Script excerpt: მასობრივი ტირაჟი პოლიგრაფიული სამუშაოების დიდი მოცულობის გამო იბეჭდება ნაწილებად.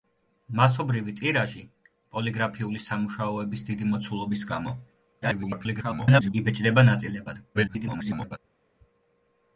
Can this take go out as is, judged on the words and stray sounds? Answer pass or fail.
fail